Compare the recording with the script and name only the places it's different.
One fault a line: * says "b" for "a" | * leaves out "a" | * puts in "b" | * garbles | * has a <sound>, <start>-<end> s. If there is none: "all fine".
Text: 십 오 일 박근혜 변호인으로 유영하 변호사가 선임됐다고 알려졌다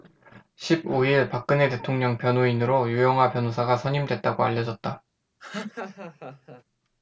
* puts in "대통령"
* has a laugh, 5.4-6.6 s